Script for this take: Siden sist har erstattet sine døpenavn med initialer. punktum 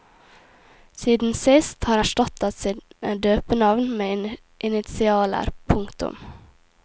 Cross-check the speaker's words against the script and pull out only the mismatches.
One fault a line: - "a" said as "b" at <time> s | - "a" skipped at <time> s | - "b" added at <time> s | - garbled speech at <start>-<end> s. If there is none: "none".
none